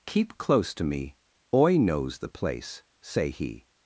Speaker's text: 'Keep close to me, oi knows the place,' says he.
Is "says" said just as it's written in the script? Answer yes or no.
no